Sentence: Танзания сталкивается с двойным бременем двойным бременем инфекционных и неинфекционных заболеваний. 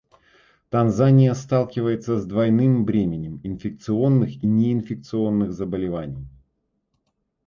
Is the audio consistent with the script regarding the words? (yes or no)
no